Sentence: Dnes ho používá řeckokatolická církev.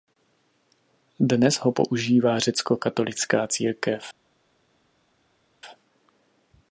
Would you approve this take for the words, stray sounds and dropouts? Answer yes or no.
yes